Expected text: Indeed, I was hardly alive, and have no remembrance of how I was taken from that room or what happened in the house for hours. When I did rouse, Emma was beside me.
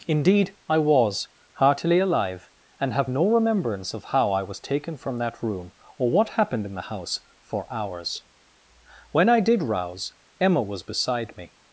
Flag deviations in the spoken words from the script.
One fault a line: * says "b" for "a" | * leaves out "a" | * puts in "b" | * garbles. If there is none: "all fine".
* says "heartily" for "hardly"